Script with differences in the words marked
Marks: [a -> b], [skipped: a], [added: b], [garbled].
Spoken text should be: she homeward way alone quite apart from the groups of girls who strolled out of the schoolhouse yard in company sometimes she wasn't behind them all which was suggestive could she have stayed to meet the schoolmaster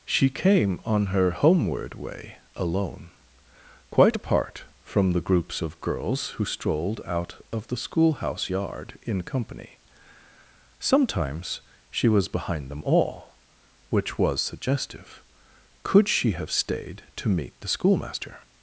she [added: came on her] homeward way alone quite apart from the groups of girls who strolled out of the schoolhouse yard in company sometimes she [wasn't -> was] behind them all which was suggestive could she have stayed to meet the schoolmaster